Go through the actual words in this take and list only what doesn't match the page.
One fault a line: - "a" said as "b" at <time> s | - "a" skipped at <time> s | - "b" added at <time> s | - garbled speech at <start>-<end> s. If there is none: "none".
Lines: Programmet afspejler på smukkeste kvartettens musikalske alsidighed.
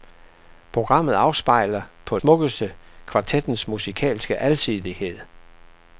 none